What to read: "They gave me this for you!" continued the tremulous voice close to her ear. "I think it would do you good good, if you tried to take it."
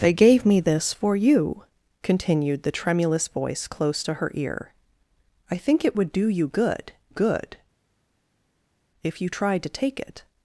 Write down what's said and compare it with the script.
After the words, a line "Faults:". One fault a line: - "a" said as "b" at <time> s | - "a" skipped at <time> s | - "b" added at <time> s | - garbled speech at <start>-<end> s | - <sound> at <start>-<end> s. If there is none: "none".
"They gave me this for you!" continued the tremulous voice close to her ear. "I think it would do you good good, if you tried to take it."
Faults:
none